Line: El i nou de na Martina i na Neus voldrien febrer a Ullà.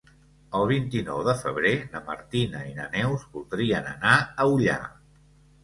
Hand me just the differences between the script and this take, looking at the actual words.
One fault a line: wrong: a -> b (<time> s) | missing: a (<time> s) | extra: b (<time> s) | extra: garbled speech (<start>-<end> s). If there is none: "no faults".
extra: vint (0.7 s)
extra: febrer (1.4 s)
wrong: febrer -> anar (4.0 s)